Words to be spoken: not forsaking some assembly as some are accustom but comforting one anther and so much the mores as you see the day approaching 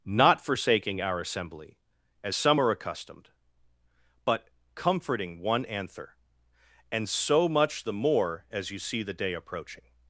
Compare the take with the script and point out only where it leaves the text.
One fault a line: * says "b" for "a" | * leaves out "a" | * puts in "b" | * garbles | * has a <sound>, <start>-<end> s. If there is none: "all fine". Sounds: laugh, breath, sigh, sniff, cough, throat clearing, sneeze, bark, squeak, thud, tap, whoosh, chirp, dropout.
* says "our" for "some"
* says "accustomed" for "accustom"
* says "more" for "mores"